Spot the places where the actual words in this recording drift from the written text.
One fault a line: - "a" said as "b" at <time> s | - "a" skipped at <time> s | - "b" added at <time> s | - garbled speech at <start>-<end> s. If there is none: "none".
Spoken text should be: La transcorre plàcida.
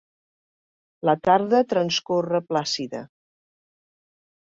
- "tarda" added at 1.3 s